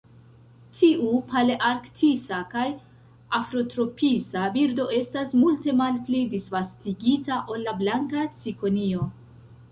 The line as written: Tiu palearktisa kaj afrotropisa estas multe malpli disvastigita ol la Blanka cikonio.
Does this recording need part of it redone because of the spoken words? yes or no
yes